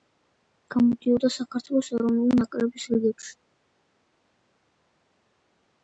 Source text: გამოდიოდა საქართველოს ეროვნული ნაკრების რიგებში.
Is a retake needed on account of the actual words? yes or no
no